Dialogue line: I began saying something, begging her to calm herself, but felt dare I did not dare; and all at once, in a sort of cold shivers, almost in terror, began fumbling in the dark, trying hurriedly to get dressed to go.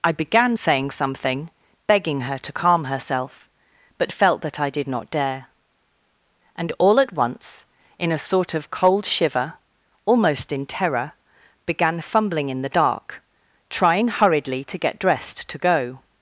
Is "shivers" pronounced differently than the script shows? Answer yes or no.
yes